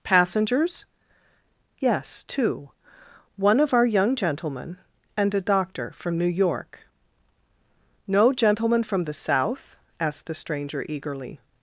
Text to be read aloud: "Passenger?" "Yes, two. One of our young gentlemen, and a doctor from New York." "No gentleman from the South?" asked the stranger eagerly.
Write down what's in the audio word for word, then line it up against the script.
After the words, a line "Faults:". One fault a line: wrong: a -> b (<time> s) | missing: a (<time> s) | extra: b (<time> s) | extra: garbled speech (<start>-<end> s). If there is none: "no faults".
"Passengers?" "Yes, two. One of our young gentlemen, and a doctor from New York." "No gentleman from the South?" asked the stranger eagerly.
Faults:
wrong: Passenger -> Passengers (0.0 s)